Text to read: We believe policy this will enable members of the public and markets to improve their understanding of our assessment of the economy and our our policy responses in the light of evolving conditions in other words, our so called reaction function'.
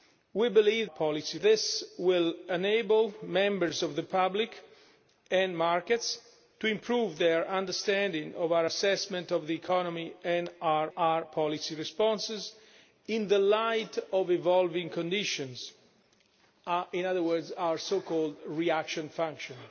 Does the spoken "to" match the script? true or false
true